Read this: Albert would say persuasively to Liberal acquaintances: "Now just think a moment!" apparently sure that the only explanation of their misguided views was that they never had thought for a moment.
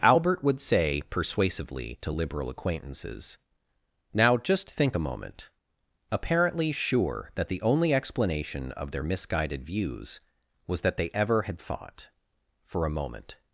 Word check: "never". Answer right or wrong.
wrong